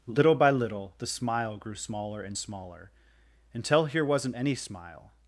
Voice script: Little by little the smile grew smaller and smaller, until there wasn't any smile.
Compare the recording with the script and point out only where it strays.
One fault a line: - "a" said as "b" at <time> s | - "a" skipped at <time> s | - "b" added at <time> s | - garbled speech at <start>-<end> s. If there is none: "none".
- "there" said as "here" at 3.8 s